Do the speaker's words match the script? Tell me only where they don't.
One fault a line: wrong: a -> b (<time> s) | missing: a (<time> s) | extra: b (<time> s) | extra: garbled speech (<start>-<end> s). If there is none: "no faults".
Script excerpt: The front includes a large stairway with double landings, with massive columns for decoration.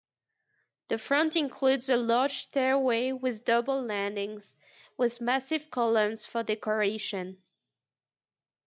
no faults